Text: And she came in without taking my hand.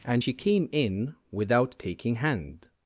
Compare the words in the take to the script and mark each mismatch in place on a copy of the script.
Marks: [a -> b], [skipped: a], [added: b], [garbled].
And she came in without taking [skipped: my] hand.